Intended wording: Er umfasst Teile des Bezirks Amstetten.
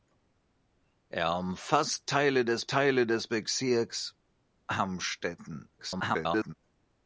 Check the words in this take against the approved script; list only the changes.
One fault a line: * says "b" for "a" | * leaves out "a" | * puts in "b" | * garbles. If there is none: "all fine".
* puts in "Teile des"
* garbles